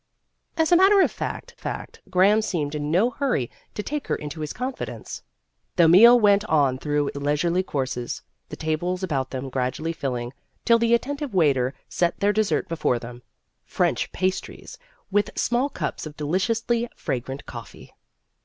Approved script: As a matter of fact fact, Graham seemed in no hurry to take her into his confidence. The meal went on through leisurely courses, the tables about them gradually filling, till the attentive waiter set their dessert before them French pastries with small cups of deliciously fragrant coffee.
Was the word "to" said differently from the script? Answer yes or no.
no